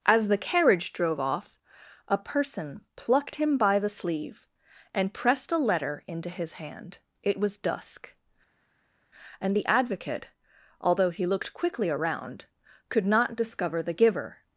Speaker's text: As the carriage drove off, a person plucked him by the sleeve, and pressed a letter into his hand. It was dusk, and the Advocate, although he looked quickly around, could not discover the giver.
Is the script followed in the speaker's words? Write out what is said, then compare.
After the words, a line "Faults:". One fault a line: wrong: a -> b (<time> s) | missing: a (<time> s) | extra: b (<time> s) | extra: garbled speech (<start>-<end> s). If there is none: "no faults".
As the carriage drove off, a person plucked him by the sleeve, and pressed a letter into his hand. It was dusk, and the Advocate, although he looked quickly around, could not discover the giver.
Faults:
no faults